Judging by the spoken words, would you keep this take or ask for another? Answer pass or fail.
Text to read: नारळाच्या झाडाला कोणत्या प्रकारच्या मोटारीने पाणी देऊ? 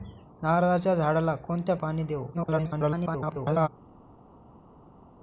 fail